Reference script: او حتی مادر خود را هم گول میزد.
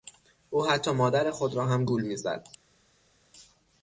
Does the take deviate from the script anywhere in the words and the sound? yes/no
no